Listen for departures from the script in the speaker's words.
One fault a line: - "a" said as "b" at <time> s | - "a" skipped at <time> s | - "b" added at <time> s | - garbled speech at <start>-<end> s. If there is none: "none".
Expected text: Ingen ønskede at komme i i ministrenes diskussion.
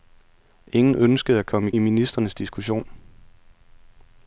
none